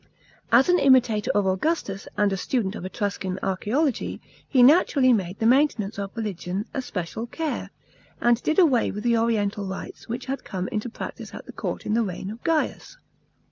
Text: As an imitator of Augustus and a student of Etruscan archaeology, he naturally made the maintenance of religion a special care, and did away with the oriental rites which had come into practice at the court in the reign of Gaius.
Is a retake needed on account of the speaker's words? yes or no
no